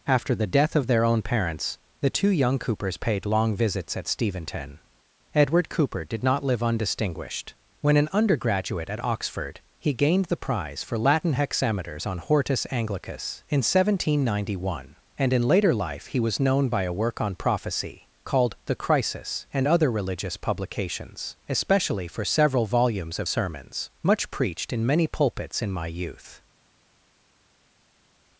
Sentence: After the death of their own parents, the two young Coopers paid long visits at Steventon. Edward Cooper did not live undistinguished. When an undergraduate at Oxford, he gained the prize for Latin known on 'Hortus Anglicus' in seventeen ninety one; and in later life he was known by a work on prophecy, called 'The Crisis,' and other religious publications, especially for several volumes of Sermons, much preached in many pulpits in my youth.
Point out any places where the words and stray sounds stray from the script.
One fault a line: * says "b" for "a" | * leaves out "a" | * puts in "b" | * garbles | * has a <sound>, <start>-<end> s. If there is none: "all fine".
* says "hexameters" for "known"